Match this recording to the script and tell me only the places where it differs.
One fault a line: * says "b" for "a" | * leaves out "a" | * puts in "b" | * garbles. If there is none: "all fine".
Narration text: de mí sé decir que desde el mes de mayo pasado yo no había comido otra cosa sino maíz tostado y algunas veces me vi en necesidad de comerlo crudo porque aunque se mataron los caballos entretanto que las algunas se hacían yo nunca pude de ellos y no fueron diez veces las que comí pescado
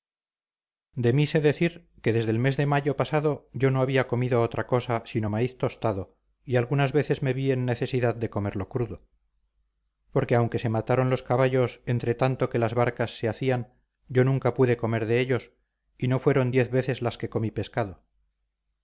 * says "barcas" for "algunas"
* puts in "comer"